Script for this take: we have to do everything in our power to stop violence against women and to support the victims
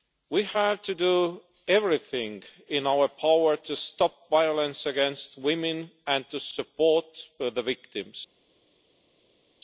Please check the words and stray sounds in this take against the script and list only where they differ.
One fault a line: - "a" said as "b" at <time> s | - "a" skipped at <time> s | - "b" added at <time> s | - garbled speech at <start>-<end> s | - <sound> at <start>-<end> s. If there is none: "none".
none